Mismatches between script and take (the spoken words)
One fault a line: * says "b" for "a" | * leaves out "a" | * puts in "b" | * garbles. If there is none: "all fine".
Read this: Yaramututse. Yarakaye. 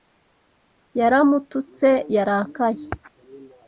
all fine